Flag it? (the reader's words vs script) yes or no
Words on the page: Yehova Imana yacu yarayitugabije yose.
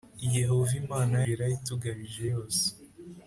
yes